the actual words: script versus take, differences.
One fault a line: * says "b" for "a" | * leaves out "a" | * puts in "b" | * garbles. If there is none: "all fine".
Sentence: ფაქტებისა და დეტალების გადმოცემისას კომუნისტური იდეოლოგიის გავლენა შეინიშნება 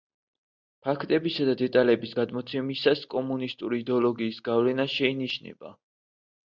all fine